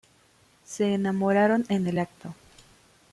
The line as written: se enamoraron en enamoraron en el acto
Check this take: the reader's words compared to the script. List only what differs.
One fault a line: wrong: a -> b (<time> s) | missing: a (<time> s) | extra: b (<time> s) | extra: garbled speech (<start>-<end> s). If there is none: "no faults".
missing: enamoraron en (1.9 s)